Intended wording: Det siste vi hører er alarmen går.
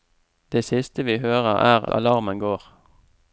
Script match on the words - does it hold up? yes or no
yes